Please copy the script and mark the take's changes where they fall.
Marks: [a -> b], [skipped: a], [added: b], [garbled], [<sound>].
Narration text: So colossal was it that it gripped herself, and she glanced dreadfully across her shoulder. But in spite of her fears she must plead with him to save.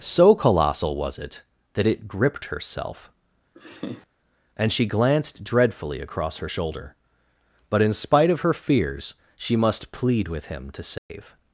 So colossal was it that it gripped herself, [laugh] and she glanced dreadfully across her shoulder. But in spite of her fears she must plead with him to save. [dropout]